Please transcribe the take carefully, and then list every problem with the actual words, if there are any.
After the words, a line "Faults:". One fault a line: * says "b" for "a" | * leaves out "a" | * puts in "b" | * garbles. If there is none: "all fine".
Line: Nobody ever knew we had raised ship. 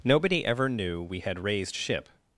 Nobody ever knew we had raised ship.
Faults:
all fine